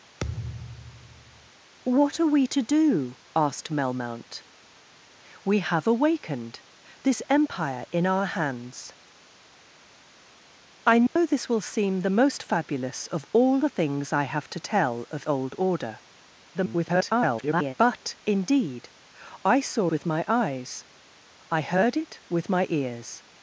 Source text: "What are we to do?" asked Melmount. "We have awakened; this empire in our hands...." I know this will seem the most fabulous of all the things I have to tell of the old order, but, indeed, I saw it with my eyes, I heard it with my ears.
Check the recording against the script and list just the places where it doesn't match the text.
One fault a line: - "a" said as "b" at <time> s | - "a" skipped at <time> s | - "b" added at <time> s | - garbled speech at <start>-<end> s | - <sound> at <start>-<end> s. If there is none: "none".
- thud at 0.2-1.5 s
- dropout at 11.1-11.2 s
- "the" skipped at 15.3 s
- garbled speech at 16.5-17.7 s
- "it" skipped at 19.9 s